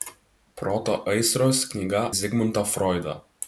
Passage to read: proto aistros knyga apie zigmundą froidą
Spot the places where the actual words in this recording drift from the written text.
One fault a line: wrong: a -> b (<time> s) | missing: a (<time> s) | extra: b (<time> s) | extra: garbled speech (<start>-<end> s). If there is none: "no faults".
missing: apie (2.0 s)